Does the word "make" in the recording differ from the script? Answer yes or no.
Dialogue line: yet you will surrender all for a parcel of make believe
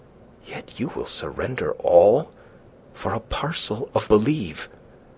yes